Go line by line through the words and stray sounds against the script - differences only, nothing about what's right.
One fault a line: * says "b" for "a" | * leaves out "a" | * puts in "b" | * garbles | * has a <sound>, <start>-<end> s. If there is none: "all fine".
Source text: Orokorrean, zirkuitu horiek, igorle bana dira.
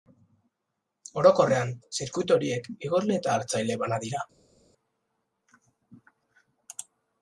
* puts in "eta hartzaile"